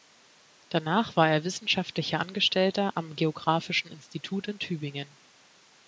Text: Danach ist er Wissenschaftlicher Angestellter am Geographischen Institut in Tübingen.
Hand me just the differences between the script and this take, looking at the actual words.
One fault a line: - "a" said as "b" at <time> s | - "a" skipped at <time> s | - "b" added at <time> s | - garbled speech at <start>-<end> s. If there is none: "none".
- "ist" said as "war" at 1.1 s